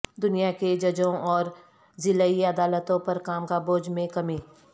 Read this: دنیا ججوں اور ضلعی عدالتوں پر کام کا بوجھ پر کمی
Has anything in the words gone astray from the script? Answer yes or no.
yes